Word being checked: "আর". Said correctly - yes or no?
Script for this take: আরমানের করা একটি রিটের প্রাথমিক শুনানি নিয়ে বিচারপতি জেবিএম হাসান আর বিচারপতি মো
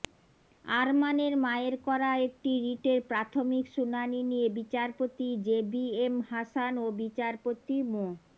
no